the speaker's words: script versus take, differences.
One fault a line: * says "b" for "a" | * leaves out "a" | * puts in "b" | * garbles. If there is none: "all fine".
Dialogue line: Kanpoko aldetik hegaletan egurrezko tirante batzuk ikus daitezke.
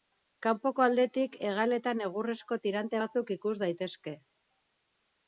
all fine